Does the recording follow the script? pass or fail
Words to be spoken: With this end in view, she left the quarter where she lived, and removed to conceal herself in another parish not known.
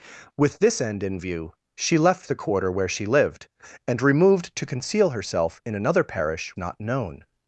pass